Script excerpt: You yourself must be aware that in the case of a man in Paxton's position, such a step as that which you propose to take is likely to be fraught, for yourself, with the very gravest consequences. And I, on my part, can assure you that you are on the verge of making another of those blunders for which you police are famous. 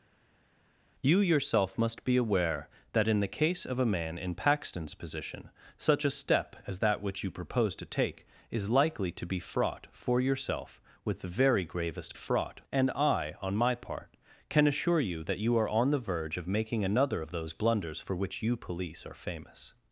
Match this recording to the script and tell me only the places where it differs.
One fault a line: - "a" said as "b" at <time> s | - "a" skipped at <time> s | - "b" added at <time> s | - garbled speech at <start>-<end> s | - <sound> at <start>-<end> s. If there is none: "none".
- "consequences" said as "fraught" at 12.1 s